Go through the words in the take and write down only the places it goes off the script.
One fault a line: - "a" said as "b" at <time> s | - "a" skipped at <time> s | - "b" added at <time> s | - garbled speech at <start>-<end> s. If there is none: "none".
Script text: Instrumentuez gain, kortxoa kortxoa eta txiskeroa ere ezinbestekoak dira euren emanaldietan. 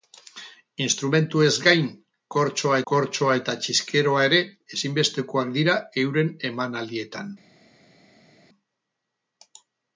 none